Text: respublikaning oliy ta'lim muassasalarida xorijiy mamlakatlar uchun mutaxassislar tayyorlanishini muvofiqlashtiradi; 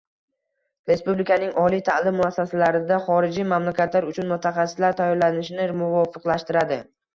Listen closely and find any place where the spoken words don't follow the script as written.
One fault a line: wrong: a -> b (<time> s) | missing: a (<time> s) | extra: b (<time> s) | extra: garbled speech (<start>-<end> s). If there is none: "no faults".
no faults